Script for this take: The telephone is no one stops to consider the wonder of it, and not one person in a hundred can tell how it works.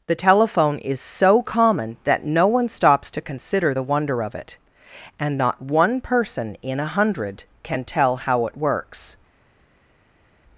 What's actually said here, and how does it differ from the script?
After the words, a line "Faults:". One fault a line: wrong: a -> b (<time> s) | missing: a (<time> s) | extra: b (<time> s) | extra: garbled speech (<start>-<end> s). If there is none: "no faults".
The telephone is so common that no one stops to consider the wonder of it, and not one person in a hundred can tell how it works.
Faults:
extra: so common that (1.0 s)